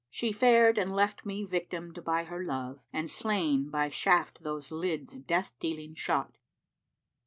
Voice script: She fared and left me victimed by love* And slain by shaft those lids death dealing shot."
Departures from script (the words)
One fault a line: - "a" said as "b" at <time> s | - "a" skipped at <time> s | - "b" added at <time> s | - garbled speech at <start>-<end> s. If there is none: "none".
- "her" added at 2.2 s